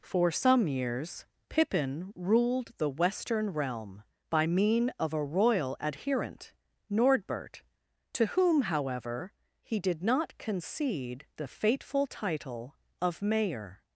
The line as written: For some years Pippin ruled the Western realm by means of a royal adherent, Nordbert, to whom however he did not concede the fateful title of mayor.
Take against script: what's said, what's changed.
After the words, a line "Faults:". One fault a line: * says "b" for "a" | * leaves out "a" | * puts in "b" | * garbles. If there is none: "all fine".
For some years Pippin ruled the Western realm by mean of a royal adherent, Nordbert, to whom however he did not concede the fateful title of mayor.
Faults:
* says "mean" for "means"